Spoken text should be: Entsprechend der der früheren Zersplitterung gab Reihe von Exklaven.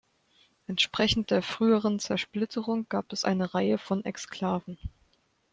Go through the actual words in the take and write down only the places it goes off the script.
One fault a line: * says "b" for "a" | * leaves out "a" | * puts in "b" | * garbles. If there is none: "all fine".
* leaves out "der"
* puts in "es eine"